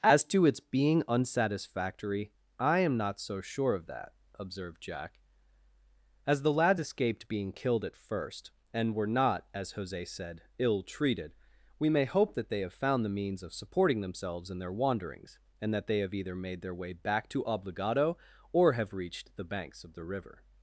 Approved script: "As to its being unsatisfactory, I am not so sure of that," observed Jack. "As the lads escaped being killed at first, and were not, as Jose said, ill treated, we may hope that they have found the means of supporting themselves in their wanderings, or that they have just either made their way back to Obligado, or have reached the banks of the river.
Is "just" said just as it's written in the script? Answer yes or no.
no